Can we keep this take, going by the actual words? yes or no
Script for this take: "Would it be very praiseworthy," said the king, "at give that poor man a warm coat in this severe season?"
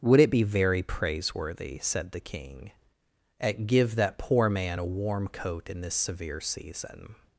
yes